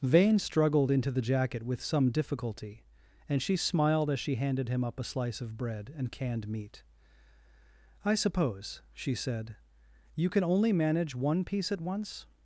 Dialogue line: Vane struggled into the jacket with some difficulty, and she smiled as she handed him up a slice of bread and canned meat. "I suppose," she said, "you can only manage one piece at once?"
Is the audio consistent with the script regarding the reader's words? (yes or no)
yes